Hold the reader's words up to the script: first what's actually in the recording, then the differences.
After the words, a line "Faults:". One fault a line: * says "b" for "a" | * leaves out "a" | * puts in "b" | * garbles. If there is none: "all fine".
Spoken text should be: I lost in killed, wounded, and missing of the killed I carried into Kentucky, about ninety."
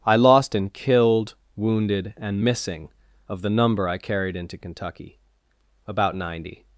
I lost in killed, wounded, and missing of the number I carried into Kentucky, about ninety."
Faults:
* says "number" for "killed"